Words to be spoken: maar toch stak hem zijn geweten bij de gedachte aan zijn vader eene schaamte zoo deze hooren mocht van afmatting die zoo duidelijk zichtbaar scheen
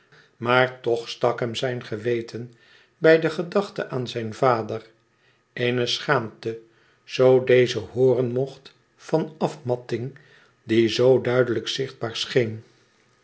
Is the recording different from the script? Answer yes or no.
no